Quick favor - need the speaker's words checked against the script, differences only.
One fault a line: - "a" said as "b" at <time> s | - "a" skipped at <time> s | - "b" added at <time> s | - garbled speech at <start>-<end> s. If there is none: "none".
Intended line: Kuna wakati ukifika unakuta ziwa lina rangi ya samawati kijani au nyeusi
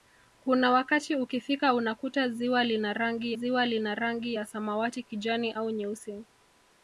- "ziwa lina rangi" added at 3.3 s